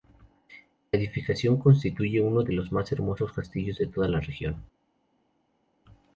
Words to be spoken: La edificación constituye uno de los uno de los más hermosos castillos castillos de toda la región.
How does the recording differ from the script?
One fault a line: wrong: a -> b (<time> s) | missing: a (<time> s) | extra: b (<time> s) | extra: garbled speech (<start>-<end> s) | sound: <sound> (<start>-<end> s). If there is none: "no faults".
missing: uno de los (2.7 s)
missing: castillos (3.8 s)